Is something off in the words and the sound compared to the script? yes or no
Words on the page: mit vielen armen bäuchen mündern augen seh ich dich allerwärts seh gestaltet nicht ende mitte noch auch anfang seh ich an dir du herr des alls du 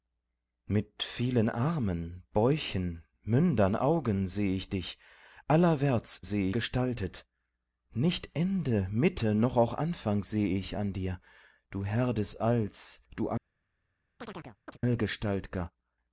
yes